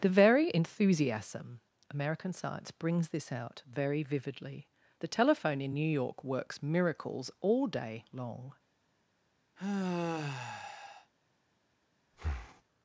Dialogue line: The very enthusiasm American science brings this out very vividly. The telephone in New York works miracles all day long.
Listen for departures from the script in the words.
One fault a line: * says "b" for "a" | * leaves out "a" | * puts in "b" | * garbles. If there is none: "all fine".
all fine